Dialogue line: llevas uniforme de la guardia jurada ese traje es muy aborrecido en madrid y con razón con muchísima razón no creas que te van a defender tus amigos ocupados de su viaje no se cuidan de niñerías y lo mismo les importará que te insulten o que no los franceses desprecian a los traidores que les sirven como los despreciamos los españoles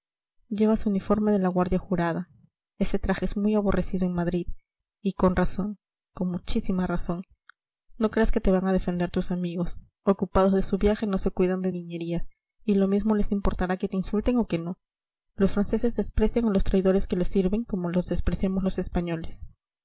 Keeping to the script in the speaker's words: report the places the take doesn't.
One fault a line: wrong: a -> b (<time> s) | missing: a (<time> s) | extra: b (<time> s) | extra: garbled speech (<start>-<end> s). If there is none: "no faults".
no faults